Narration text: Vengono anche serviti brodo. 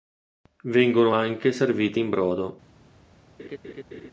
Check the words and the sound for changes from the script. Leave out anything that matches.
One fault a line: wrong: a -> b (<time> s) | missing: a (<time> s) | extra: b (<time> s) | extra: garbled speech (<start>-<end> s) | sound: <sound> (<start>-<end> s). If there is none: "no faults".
extra: in (2.0 s)
sound: laugh (3.4-4.1 s)